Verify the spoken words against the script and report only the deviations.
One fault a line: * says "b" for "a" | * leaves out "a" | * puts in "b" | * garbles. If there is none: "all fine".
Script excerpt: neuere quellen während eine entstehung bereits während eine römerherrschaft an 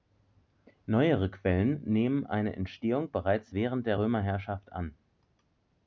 * says "nehmen" for "während"
* says "der" for "eine"